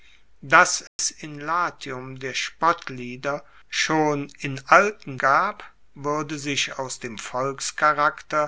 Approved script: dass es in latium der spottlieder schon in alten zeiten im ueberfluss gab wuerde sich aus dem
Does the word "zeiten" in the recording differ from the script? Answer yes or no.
yes